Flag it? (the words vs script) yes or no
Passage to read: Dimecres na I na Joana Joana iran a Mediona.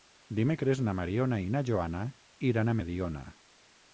yes